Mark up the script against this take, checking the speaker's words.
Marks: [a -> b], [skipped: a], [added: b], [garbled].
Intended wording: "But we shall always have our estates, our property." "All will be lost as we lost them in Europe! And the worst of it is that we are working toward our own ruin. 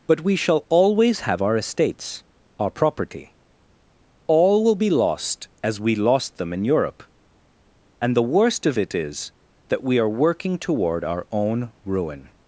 "But we shall always have our estates, our property." "All will be lost as we lost them in Europe! And the worst of it is that we are working toward our own ruin.